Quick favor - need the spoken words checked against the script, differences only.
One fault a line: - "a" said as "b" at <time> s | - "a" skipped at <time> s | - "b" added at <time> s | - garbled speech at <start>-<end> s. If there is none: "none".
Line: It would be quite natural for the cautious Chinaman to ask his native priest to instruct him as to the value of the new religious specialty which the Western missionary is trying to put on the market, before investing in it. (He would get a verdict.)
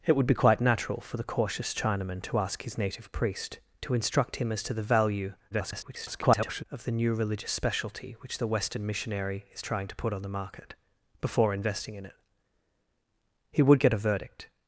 - garbled speech at 5.5-6.6 s